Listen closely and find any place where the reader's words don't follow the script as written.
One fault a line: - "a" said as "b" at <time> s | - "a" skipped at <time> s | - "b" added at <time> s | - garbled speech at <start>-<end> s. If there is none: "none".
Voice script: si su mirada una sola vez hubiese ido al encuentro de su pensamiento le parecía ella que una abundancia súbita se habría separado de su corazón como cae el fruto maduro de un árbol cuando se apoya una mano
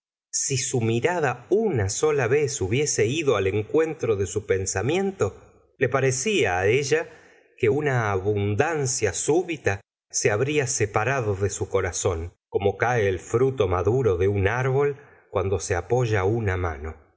none